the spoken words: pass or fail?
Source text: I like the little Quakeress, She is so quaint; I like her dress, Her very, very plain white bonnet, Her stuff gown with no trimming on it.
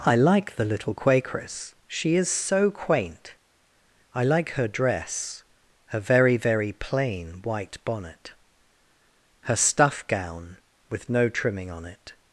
pass